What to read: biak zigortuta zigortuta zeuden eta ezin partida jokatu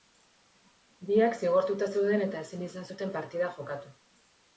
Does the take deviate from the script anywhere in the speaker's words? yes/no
yes